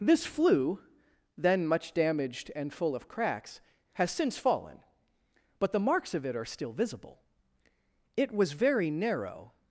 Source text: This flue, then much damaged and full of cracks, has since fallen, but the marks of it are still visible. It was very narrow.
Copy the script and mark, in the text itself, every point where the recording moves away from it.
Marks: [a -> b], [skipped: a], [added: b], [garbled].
This flue, then much damaged and full of cracks, has since fallen, but the marks of it are still visible. It was very narrow.